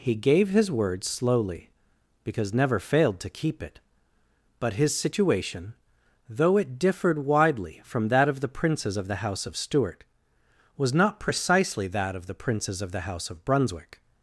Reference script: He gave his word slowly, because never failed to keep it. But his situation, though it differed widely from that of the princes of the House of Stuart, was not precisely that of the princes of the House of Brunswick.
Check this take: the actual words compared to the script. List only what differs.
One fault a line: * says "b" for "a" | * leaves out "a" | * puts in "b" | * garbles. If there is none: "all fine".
all fine